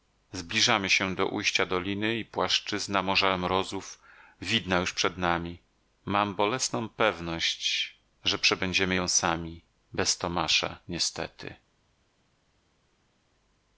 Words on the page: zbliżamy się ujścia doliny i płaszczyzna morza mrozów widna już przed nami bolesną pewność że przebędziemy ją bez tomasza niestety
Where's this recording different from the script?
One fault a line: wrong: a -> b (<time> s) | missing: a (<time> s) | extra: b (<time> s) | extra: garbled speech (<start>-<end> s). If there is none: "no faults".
extra: do (1.1 s)
extra: mam (6.0 s)
extra: sami (9.1 s)